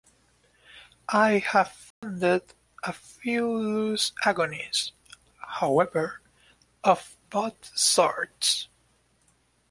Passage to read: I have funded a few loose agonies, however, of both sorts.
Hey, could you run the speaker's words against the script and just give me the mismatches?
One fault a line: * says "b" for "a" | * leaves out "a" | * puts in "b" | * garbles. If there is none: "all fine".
all fine